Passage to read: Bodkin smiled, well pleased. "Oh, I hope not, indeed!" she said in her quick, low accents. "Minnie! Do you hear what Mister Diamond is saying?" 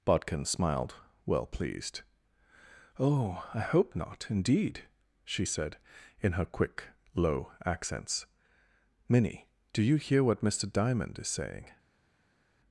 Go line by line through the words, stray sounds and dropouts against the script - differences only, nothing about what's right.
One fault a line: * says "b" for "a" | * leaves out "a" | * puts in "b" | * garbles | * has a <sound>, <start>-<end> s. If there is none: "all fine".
all fine